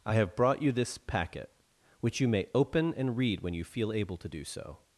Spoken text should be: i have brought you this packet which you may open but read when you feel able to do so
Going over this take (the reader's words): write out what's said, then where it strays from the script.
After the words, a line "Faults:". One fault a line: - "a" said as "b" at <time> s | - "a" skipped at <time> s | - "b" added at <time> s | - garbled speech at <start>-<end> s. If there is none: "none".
i have brought you this packet which you may open and read when you feel able to do so
Faults:
- "but" said as "and" at 2.9 s